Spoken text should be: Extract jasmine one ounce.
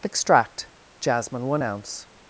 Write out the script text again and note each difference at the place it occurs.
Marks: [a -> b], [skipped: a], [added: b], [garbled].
Extract jasmine one ounce.